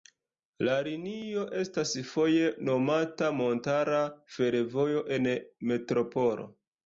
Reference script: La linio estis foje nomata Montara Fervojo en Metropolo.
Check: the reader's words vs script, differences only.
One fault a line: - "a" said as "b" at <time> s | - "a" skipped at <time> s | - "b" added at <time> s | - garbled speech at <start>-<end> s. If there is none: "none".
- "estis" said as "estas" at 1.6 s